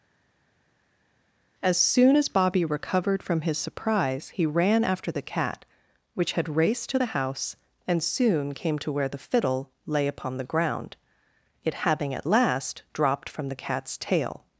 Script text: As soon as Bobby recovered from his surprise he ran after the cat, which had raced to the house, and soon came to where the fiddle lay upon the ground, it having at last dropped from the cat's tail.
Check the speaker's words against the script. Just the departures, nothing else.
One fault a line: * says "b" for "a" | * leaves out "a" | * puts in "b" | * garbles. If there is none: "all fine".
all fine